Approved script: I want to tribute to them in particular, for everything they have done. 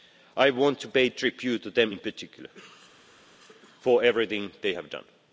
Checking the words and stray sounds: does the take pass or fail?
fail